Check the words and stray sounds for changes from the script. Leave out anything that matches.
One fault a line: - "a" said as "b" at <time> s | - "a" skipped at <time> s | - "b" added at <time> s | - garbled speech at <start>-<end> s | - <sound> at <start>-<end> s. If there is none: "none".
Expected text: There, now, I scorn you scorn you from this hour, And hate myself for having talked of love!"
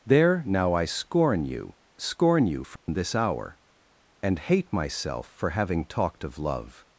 - dropout at 2.8-2.9 s